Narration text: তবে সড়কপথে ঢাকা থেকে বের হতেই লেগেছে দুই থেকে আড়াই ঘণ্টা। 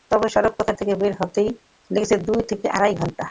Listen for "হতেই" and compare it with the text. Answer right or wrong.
right